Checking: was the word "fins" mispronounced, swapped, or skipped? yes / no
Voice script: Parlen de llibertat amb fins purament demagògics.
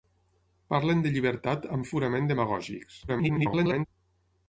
yes